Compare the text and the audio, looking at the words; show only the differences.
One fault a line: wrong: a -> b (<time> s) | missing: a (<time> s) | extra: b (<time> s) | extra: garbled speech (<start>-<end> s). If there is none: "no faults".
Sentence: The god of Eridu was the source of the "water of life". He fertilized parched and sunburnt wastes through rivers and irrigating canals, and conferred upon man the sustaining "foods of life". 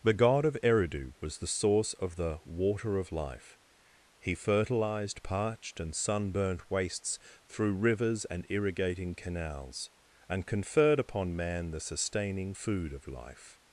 wrong: foods -> food (12.5 s)